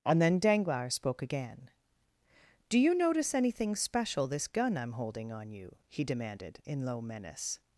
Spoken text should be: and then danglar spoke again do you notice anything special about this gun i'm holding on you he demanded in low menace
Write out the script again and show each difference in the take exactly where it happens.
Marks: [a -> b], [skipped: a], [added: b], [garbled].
and then danglar spoke again do you notice anything special [skipped: about] this gun i'm holding on you he demanded in low menace